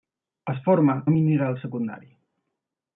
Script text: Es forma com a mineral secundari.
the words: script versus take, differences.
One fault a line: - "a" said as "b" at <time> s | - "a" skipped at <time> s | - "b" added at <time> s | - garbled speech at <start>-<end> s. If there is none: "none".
- "com" skipped at 0.9 s